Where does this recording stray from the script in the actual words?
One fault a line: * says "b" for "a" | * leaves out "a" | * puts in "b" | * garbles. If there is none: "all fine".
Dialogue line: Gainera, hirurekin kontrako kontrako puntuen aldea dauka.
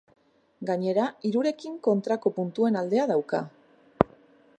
* leaves out "kontrako"